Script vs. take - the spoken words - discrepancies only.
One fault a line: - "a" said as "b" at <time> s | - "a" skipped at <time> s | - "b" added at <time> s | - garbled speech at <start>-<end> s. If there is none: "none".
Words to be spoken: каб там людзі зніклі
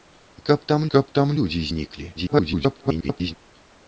- "каб там" added at 0.9 s
- garbled speech at 2.2-3.3 s